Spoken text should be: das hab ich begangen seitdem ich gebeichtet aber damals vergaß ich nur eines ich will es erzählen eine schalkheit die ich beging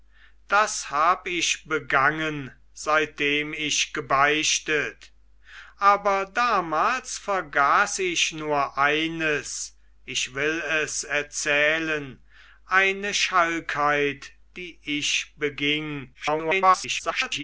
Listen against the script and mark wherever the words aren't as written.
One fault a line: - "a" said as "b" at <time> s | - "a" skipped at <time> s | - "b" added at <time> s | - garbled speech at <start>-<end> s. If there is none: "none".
- garbled speech at 16.1-17.4 s